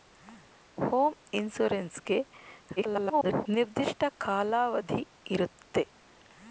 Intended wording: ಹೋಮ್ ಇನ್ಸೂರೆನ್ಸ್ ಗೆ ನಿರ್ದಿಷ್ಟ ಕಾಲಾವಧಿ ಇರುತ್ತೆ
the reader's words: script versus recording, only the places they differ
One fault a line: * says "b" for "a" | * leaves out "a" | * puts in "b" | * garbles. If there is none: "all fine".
* garbles